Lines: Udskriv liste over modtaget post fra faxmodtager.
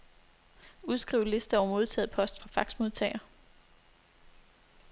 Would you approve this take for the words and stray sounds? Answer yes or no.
yes